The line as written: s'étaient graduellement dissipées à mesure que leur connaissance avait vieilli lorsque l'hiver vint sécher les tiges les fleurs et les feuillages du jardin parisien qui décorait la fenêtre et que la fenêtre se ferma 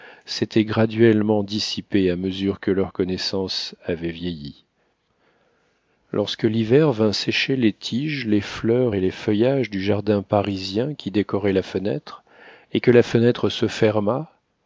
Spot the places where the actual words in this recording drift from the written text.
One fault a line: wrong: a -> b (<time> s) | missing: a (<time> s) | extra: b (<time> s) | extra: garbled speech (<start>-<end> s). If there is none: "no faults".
no faults